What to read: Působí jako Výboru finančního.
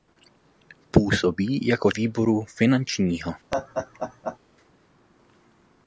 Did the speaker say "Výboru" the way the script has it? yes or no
yes